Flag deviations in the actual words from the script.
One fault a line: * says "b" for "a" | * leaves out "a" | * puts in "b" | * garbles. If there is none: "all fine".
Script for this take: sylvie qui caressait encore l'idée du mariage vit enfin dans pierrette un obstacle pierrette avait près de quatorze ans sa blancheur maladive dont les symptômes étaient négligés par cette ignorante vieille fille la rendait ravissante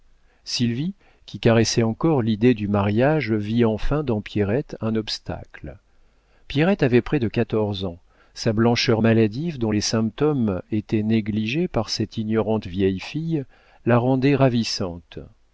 all fine